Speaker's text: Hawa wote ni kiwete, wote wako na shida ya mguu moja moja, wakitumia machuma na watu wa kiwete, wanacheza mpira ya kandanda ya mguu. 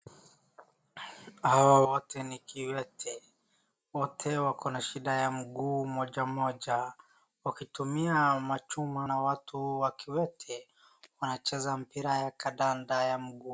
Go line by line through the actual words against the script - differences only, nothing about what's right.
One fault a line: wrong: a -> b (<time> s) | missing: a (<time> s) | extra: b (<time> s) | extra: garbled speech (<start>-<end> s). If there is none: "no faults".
no faults